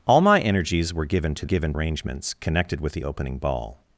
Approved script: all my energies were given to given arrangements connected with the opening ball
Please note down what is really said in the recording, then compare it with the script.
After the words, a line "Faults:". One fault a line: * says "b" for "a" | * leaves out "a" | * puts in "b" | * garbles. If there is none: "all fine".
all my energies were given to given arrangements connected with the opening ball
Faults:
all fine